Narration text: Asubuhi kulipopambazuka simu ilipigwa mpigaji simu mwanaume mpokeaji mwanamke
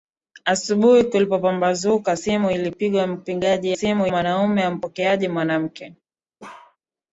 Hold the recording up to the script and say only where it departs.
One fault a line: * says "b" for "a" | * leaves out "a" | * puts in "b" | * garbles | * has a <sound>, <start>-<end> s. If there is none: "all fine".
* has a bark, 6.4-6.8 s